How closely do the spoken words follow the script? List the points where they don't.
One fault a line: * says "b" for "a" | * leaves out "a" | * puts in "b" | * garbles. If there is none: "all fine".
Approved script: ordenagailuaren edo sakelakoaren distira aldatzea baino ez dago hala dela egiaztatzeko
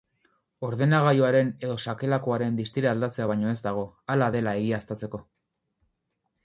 all fine